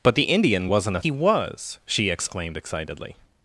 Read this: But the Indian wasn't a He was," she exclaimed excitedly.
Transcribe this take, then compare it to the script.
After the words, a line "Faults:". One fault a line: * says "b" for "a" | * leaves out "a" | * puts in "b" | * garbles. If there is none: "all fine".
But the Indian wasn't a He was," she exclaimed excitedly.
Faults:
all fine